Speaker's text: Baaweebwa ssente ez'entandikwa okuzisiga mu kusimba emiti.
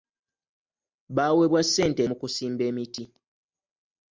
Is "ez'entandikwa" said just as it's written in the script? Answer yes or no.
no